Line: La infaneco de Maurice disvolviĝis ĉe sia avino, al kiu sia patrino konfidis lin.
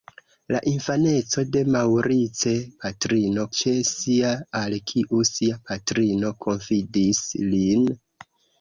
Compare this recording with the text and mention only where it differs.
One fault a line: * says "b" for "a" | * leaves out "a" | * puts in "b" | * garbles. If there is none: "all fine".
* says "patrino" for "disvolviĝis"
* leaves out "avino"